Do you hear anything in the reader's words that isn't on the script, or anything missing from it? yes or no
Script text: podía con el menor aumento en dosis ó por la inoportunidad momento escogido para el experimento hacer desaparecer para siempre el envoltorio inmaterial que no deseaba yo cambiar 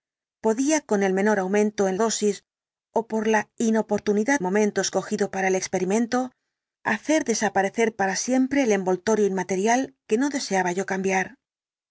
no